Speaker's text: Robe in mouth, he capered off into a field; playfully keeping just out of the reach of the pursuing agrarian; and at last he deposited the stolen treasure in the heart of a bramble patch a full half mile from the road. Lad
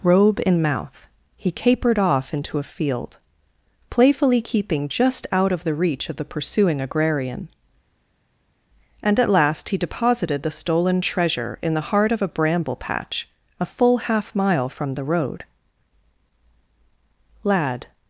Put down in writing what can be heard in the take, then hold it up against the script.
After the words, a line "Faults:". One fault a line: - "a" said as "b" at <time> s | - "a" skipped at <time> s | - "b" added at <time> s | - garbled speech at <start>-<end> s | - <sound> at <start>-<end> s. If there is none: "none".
Robe in mouth, he capered off into a field; playfully keeping just out of the reach of the pursuing agrarian; and at last he deposited the stolen treasure in the heart of a bramble patch a full half mile from the road. Lad
Faults:
none